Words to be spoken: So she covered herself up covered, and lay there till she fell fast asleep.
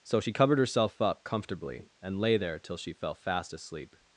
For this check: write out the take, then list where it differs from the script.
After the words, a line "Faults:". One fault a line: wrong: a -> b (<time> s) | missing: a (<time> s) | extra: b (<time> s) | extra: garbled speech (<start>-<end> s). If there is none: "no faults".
So she covered herself up comfortably, and lay there till she fell fast asleep.
Faults:
wrong: covered -> comfortably (1.2 s)